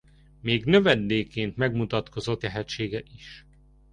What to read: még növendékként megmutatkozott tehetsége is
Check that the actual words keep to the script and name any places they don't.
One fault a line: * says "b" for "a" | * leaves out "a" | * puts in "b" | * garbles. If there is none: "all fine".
all fine